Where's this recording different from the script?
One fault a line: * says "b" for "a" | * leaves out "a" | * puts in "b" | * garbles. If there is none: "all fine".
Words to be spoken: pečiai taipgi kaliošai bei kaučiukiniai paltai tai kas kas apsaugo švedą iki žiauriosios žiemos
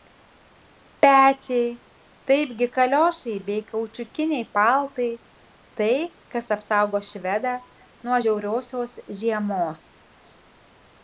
* leaves out "kas"
* says "nuo" for "iki"